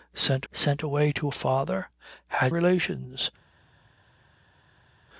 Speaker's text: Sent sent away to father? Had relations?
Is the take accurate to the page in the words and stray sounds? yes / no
yes